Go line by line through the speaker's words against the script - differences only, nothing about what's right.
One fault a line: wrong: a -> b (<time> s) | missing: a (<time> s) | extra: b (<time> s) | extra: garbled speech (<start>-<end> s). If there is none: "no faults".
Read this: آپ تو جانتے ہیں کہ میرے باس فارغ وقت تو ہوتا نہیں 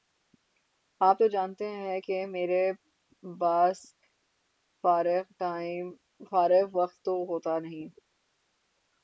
no faults